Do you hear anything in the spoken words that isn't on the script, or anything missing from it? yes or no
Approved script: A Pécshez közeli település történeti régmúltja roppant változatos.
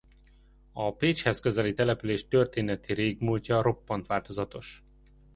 no